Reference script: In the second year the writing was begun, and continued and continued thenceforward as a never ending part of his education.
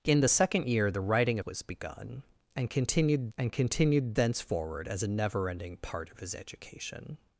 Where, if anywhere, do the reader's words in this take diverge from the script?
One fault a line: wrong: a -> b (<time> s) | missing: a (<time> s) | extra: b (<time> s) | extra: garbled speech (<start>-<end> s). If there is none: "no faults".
no faults